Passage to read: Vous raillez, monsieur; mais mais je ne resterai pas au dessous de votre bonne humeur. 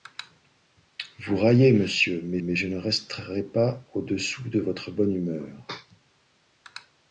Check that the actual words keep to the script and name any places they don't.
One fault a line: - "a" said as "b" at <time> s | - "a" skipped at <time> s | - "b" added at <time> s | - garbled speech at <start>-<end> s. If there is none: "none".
none